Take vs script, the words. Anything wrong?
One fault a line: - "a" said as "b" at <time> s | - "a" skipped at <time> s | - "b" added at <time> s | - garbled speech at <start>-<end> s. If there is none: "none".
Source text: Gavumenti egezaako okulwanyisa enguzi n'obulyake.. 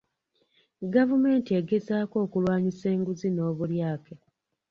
none